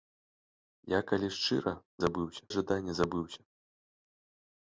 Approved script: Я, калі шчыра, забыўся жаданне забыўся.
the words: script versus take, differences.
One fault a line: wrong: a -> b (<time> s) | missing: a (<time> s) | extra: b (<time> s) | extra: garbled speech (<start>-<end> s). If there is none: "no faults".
no faults